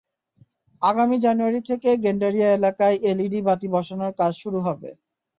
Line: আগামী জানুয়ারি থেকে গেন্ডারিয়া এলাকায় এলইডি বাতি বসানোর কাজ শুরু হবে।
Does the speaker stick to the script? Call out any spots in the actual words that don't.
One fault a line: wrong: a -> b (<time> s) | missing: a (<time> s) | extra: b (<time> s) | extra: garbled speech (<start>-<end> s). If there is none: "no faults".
no faults